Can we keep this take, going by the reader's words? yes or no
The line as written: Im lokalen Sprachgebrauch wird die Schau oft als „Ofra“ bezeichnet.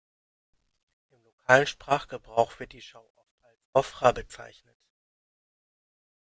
yes